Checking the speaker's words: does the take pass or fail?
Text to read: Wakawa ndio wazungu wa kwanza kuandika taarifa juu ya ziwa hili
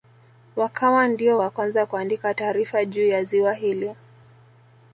fail